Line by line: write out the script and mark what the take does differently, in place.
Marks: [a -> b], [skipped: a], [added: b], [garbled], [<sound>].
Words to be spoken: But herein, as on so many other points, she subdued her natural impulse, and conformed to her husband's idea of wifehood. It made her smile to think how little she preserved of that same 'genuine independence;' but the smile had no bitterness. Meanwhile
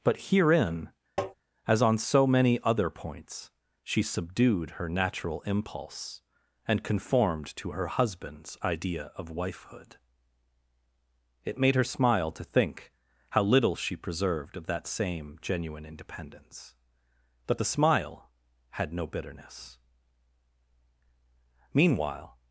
But herein, [tap] as on so many other points, she subdued her natural impulse, and conformed to her husband's idea of wifehood. It made her smile to think how little she preserved of that same 'genuine independence;' but the smile had no bitterness. Meanwhile